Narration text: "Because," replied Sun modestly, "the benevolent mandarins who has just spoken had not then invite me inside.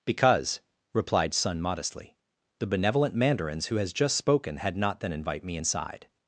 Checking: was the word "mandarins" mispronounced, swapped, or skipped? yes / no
no